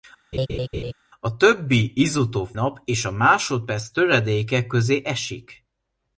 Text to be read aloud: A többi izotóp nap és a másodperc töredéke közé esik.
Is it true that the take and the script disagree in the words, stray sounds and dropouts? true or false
true